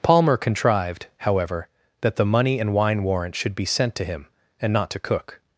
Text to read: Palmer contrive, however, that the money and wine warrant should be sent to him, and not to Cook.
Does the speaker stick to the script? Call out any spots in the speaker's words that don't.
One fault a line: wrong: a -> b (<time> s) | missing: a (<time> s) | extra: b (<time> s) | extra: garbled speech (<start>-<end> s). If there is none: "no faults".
wrong: contrive -> contrived (0.4 s)